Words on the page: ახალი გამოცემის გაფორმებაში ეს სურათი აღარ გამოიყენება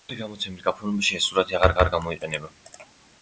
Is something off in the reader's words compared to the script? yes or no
yes